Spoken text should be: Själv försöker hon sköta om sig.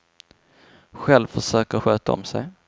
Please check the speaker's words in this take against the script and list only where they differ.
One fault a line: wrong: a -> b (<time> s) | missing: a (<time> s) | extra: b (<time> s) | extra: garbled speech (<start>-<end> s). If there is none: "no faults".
missing: hon (1.8 s)